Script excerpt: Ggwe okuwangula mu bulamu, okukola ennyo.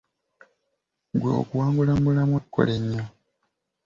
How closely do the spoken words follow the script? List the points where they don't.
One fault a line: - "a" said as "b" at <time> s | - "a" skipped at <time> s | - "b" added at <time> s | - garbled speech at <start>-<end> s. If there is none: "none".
none